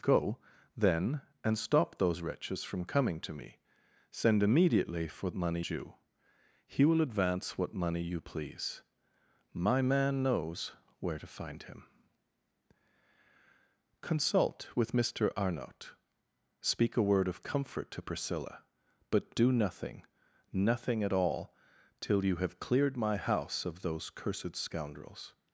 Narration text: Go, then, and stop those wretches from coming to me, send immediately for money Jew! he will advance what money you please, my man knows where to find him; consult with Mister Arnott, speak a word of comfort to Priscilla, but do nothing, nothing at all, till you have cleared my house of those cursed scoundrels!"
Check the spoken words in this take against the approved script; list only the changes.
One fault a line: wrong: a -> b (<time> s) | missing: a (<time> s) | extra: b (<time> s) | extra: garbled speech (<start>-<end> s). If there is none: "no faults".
no faults